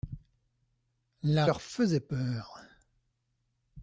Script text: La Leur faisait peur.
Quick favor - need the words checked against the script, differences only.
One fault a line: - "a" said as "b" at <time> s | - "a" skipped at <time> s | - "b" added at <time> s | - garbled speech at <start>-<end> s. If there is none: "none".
none